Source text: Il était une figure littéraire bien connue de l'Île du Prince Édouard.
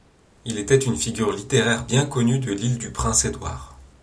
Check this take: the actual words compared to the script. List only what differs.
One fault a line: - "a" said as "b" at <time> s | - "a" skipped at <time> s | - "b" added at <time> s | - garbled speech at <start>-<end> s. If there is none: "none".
none